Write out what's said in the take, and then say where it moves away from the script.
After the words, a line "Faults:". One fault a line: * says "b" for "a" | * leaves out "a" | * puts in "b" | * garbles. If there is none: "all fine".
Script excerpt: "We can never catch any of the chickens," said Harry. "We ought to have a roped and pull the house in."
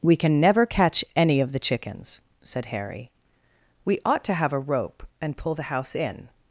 "We can never catch any of the chickens," said Harry. "We ought to have a rope and pull the house in."
Faults:
* says "rope" for "roped"